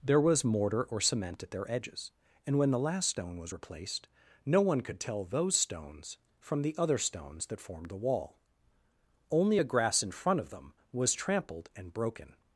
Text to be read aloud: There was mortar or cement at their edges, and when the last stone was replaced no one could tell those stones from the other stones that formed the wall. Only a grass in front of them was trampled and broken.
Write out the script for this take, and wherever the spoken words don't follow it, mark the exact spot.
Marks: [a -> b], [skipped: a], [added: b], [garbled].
There was mortar or cement at their edges, and when the last stone was replaced no one could tell those stones from the other stones that formed the wall. Only a grass in front of them was trampled and broken.